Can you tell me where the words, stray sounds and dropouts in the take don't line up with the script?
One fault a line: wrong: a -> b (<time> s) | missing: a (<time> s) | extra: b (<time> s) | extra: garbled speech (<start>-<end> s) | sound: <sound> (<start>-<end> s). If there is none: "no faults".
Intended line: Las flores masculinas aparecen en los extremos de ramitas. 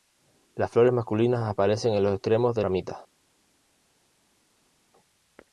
no faults